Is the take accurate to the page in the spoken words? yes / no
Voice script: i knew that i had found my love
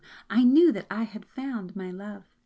yes